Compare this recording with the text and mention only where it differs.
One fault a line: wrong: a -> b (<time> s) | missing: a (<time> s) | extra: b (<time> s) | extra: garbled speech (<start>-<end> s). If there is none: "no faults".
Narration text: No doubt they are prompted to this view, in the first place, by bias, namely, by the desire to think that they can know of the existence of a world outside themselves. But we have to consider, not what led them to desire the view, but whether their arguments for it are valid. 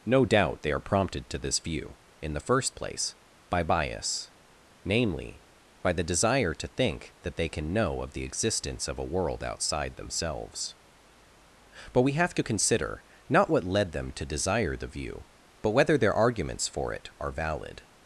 no faults